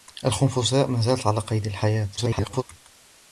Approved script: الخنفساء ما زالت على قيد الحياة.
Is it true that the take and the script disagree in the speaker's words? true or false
true